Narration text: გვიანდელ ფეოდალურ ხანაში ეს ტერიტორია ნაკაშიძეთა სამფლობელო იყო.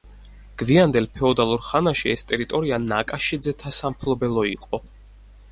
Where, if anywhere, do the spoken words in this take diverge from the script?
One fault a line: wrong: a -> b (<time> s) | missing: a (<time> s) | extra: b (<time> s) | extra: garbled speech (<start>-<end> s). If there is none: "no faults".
no faults